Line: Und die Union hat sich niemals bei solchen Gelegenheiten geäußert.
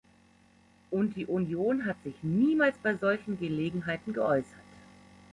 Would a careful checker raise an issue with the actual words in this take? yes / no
no